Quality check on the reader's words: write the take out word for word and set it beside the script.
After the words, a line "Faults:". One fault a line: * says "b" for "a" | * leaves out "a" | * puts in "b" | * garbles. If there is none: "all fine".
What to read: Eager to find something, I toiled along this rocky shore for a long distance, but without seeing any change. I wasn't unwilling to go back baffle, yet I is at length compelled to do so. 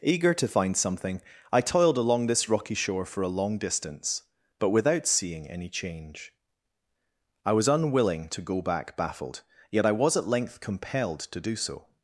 Eager to find something, I toiled along this rocky shore for a long distance, but without seeing any change. I was unwilling to go back baffled, yet I was at length compelled to do so.
Faults:
* says "was" for "wasn't"
* says "baffled" for "baffle"
* says "was" for "is"